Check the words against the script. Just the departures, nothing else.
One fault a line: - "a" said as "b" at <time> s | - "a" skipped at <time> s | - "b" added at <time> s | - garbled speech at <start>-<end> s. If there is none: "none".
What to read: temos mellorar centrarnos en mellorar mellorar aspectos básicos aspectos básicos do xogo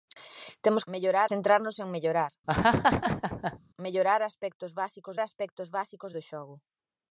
none